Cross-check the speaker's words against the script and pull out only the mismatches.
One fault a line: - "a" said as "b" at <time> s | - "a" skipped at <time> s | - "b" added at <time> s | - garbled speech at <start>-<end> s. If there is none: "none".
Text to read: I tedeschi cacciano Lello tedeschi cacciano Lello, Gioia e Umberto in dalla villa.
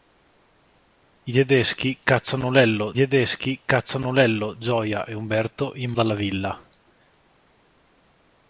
none